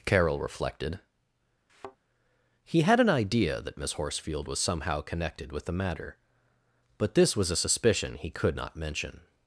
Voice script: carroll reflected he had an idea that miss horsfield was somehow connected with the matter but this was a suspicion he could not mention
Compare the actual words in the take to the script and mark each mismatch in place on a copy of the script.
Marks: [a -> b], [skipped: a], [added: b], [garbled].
carroll reflected he had an idea that miss horsfield was somehow connected with the matter but this was a suspicion he could not mention